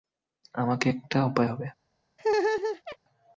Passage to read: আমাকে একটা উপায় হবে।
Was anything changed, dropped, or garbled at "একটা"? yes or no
no